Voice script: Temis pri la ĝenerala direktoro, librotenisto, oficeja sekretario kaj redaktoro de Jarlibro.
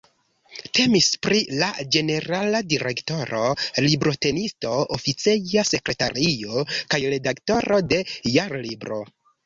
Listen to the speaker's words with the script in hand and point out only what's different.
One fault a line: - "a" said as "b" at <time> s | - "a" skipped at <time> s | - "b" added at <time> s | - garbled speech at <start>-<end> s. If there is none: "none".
none